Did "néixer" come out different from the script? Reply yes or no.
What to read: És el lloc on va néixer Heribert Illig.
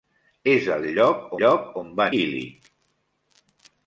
yes